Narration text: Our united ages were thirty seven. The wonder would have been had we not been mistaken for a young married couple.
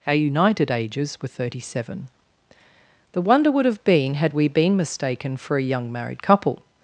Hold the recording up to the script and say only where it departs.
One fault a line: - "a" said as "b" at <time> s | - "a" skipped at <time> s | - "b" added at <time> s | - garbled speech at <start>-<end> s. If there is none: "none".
- "not" skipped at 4.5 s